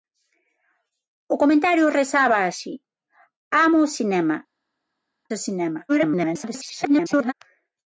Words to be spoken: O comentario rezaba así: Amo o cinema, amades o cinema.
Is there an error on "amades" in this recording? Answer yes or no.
yes